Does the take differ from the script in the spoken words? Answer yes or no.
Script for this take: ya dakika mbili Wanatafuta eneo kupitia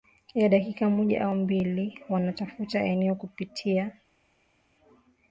yes